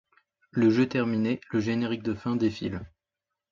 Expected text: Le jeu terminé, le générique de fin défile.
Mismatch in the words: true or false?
false